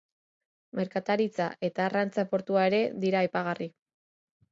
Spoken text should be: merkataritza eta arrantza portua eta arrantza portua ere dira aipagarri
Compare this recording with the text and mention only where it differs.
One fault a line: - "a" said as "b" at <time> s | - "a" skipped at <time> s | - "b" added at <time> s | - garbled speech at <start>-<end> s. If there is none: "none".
- "eta arrantza portua" skipped at 2.6 s